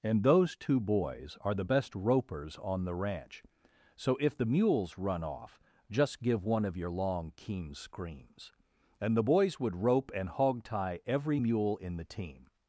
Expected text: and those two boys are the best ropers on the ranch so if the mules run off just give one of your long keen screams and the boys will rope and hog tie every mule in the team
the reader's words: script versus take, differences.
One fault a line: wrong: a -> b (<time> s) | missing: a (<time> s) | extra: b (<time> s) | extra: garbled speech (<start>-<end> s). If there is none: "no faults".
wrong: will -> would (9.6 s)